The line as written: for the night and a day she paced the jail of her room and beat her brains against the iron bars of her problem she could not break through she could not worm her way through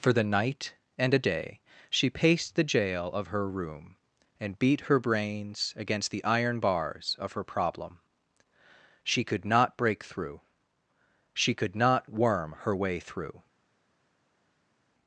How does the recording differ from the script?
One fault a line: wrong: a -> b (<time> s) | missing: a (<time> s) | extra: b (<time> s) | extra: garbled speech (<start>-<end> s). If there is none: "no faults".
no faults